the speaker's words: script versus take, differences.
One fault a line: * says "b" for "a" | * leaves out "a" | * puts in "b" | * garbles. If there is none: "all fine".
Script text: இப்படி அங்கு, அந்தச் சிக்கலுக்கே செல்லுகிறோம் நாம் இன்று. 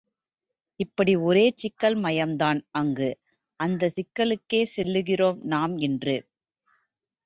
* puts in "ஒரே சிக்கல் மயம்தான்"